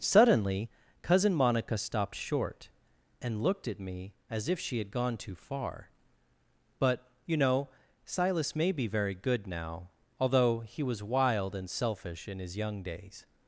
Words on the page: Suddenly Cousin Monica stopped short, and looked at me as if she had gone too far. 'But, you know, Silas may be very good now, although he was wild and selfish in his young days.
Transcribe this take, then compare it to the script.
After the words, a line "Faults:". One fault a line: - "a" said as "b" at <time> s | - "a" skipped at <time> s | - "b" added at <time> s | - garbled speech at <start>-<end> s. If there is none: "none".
Suddenly Cousin Monica stopped short, and looked at me as if she had gone too far. 'But, you know, Silas may be very good now, although he was wild and selfish in his young days.
Faults:
none